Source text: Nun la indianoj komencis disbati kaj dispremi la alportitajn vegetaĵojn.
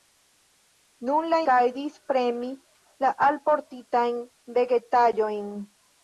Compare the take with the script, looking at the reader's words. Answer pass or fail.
fail